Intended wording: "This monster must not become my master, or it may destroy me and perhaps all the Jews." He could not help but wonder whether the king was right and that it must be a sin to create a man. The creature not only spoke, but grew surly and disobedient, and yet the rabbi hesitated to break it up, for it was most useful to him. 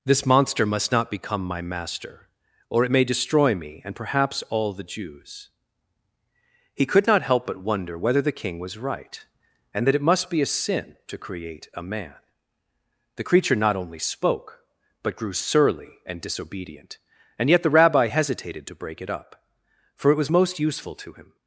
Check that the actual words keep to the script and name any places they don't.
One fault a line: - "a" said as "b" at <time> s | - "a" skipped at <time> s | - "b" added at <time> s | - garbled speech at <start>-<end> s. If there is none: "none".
none